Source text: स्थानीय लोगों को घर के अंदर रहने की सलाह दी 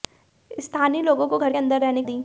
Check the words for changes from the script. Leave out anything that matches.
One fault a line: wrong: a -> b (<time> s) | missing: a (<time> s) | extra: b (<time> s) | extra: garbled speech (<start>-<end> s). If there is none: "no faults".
missing: के (1.5 s)
missing: की सलाह (2.0 s)